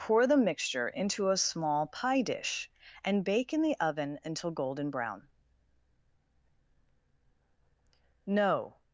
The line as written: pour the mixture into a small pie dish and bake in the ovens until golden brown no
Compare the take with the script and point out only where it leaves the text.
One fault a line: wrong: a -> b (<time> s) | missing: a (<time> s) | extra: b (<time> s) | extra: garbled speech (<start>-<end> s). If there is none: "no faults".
wrong: ovens -> oven (3.8 s)